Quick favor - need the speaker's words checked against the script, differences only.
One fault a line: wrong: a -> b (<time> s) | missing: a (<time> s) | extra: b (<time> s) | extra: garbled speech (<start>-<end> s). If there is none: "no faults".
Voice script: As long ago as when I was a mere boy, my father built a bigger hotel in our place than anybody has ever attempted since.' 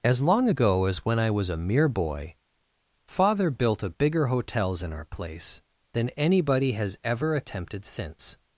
missing: my (2.4 s)
wrong: hotel -> hotels (4.3 s)